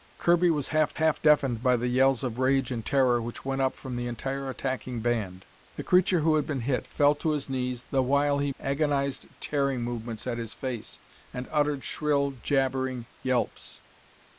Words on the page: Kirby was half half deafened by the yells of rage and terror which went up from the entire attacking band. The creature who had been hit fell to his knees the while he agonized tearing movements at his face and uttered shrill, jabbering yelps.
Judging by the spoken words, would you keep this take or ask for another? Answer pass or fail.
pass